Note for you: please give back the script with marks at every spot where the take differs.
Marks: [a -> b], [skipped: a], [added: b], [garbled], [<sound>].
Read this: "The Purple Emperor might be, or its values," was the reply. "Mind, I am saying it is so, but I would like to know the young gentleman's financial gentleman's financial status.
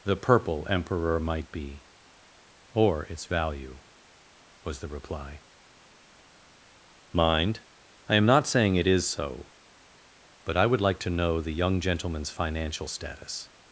"The Purple Emperor might be, or its [values," -> value] was the reply. "Mind, I am [added: not] saying it is so, but I would like to know the young gentleman's financial [skipped: gentleman's financial] status.